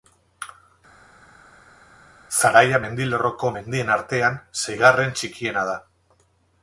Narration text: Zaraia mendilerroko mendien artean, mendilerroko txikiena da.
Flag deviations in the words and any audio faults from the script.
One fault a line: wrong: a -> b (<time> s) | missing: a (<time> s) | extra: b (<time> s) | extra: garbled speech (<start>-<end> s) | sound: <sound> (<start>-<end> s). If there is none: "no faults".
wrong: mendilerroko -> seigarren (4.7 s)